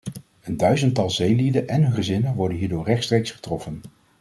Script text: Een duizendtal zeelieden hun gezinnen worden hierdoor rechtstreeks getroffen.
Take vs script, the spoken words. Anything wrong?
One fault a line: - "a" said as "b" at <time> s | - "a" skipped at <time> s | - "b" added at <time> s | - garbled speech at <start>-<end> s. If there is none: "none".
- "en" added at 1.7 s